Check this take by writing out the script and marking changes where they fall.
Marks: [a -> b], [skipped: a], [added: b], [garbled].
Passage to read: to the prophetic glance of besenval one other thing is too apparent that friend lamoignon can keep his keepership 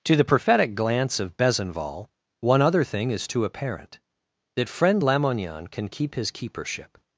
to the prophetic glance of besenval one other thing is too apparent that friend lamoignon can keep his keepership